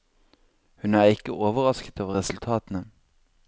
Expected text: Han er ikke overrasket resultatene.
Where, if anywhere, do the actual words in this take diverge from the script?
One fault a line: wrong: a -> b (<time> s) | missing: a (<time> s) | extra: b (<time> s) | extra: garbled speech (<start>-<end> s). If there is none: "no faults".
wrong: Han -> Hun (0.8 s)
extra: over (2.0 s)